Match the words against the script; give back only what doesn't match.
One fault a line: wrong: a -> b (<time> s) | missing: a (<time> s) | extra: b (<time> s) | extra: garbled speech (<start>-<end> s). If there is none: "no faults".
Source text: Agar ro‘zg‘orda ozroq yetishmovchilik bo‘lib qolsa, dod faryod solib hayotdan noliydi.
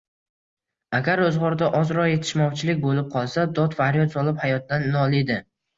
no faults